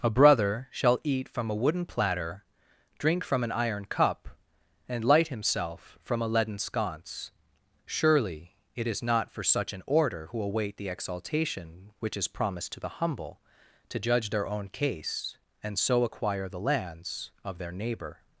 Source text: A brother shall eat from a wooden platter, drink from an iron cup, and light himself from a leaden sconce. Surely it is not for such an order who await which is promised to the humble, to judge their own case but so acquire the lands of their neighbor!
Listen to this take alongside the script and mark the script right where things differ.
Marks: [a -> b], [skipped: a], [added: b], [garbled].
A brother shall eat from a wooden platter, drink from an iron cup, and light himself from a leaden sconce. Surely it is not for such an order who await [added: the exaltation] which is promised to the humble, to judge their own case [but -> and] so acquire the lands of their neighbor!